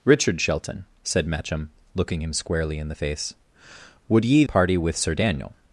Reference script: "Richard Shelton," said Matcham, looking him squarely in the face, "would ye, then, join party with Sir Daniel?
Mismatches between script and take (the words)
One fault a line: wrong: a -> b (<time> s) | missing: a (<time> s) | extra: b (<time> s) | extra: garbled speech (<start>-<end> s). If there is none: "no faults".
missing: then join (4.4 s)